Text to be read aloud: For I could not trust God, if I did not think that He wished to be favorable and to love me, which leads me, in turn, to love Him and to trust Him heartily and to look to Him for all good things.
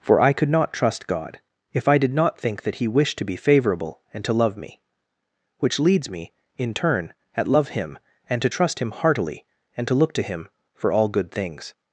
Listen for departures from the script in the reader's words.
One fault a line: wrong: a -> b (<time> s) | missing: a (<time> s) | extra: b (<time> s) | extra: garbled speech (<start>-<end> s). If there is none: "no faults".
wrong: to -> at (7.4 s)